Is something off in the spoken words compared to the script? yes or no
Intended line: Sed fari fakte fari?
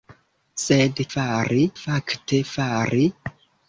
no